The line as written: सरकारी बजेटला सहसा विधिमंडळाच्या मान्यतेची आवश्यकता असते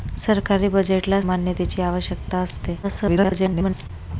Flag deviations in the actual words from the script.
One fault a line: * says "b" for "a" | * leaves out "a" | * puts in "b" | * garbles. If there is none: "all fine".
* leaves out "सहसा विधिमंडळाच्या"
* garbles